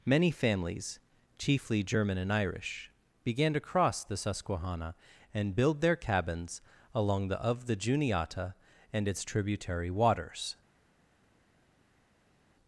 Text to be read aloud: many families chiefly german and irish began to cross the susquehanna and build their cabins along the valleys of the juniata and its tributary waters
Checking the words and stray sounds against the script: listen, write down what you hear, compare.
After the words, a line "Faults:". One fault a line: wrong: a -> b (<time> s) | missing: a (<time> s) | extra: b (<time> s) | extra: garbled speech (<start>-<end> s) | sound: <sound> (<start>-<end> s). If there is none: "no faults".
many families chiefly german and irish began to cross the susquehanna and build their cabins along the of the juniata and its tributary waters
Faults:
missing: valleys (7.4 s)